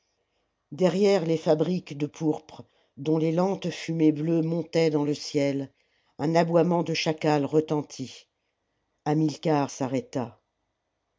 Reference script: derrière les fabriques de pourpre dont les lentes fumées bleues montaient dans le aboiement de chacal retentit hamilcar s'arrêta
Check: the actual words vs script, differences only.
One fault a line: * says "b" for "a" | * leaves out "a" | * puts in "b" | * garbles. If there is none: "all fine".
* puts in "ciel un"